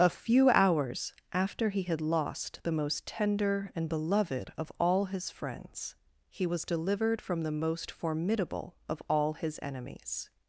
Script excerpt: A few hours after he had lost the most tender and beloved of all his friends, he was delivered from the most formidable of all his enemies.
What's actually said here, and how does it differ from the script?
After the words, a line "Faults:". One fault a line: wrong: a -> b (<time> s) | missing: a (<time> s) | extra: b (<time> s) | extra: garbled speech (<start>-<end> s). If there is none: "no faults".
A few hours after he had lost the most tender and beloved of all his friends, he was delivered from the most formidable of all his enemies.
Faults:
no faults